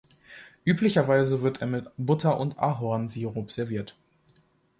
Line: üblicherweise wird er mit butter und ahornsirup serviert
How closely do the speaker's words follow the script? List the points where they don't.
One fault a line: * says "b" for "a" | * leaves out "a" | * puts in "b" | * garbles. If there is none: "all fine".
all fine